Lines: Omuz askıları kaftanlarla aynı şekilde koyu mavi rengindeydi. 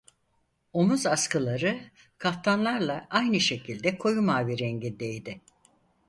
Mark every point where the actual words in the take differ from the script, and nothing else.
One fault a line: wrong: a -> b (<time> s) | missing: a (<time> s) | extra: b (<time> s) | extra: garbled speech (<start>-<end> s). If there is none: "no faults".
no faults